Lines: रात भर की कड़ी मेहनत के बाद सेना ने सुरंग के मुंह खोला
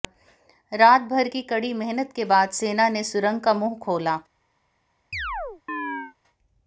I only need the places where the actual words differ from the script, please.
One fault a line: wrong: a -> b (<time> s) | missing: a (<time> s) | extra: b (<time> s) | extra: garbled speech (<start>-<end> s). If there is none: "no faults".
wrong: के -> का (3.4 s)